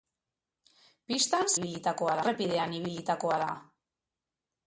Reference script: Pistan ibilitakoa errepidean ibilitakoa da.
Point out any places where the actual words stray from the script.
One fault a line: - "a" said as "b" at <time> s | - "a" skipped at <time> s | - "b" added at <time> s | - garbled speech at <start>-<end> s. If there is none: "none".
none